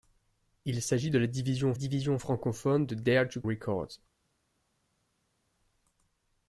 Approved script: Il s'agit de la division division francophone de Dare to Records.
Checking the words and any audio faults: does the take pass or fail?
pass